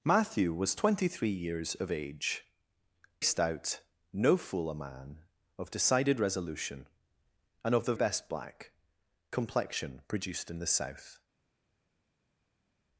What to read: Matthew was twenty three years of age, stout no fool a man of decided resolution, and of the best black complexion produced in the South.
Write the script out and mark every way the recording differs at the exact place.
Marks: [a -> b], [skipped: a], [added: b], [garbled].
Matthew was twenty three years of age, stout no fool a man of decided resolution, and of the best black complexion produced in the South.